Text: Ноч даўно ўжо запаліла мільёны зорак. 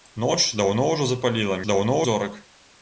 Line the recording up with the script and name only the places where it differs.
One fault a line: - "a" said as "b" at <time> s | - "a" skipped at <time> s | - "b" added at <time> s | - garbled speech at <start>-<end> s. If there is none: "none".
- "мільёны" said as "даўно" at 1.7 s